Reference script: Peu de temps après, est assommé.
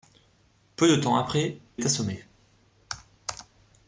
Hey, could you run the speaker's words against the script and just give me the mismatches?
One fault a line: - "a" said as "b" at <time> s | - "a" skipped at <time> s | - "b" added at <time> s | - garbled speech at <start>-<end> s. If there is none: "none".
none